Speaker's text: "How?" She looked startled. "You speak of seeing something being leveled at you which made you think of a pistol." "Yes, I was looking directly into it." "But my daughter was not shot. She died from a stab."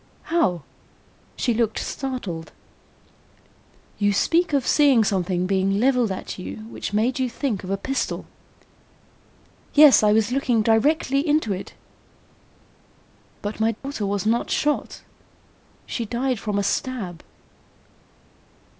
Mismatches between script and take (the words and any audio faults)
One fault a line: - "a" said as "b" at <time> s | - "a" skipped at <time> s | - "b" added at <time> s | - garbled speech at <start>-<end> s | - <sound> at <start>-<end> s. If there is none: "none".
- dropout at 13.7-13.8 s